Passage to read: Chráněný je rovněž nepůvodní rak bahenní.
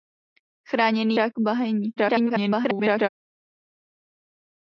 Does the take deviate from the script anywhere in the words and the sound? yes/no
yes